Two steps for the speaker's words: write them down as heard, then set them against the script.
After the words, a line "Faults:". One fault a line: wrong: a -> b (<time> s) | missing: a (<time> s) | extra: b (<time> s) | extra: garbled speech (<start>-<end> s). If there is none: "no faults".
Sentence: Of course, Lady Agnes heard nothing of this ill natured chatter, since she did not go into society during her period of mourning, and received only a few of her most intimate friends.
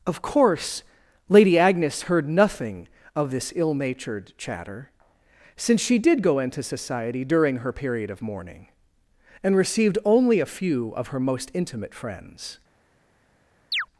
Of course, Lady Agnes heard nothing of this ill natured chatter, since she did go into society during her period of mourning, and received only a few of her most intimate friends.
Faults:
missing: not (6.2 s)